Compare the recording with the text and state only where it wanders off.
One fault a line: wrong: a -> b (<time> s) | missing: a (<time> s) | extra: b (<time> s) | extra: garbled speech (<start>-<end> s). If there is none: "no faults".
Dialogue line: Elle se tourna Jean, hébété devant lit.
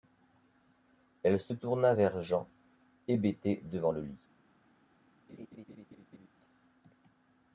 extra: vers (1.9 s)
extra: le (3.9 s)